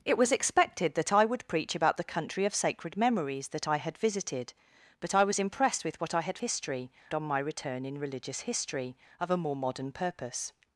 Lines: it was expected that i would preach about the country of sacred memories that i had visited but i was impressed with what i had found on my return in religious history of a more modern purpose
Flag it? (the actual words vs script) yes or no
yes